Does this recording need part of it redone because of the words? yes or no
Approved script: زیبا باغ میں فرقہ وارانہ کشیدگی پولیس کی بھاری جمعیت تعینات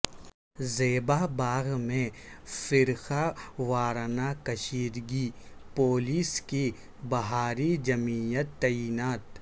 no